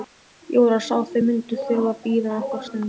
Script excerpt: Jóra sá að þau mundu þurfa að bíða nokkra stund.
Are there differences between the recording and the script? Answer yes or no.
no